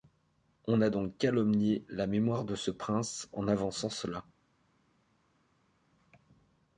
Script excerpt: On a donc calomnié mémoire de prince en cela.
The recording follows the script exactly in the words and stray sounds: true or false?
false